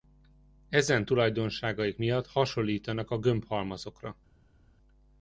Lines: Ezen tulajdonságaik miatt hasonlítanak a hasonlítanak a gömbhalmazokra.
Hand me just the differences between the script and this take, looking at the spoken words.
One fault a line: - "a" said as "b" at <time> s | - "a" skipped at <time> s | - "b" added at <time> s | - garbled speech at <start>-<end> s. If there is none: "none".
- "hasonlítanak a" skipped at 3.2 s